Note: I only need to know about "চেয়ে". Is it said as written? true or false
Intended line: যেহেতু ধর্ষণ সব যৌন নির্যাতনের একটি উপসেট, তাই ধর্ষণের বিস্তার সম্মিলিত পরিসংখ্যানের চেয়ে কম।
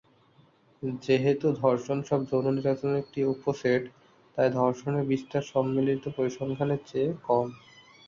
true